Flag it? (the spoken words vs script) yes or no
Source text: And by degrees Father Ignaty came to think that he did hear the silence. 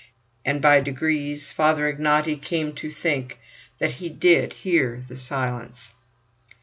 no